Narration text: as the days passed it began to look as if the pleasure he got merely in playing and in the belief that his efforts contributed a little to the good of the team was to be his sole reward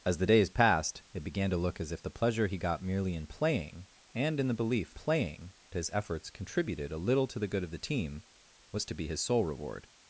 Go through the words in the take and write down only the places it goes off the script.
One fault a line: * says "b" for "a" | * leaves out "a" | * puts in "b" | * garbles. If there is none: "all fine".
* says "playing" for "that"